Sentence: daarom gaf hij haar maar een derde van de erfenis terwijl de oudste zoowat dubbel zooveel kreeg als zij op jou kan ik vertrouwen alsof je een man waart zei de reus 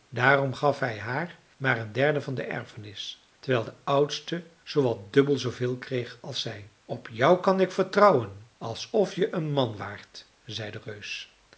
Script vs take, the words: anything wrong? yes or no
no